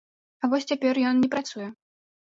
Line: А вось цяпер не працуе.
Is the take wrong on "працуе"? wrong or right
right